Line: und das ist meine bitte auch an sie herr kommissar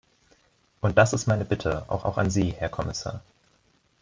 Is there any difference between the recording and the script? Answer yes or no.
yes